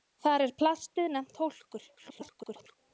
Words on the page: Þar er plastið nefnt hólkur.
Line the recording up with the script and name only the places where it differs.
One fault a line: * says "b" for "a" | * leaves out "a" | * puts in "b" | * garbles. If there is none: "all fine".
* garbles